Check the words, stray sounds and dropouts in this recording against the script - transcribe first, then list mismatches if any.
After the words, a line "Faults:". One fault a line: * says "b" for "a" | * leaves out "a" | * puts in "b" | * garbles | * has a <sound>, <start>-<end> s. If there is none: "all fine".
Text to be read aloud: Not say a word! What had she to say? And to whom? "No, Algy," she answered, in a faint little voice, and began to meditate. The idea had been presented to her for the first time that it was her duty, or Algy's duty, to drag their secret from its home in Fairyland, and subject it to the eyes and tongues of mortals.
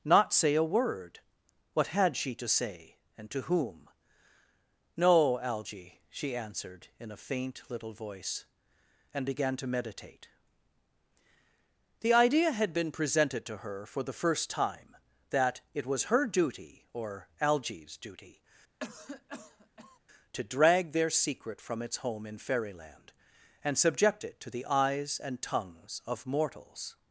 Not say a word! What had she to say? And to whom? "No, Algy," she answered, in a faint little voice, and began to meditate. The idea had been presented to her for the first time that it was her duty, or Algy's duty, to drag their secret from its home in Fairyland, and subject it to the eyes and tongues of mortals.
Faults:
* has a cough, 18.8-20.0 s